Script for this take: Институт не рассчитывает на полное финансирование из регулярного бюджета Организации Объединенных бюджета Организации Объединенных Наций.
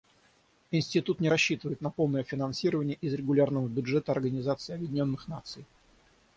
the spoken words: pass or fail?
fail